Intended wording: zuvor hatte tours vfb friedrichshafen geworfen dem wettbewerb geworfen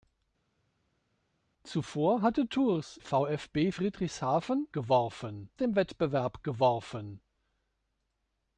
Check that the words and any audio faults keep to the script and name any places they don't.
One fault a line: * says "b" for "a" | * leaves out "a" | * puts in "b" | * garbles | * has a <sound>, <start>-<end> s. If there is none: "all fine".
all fine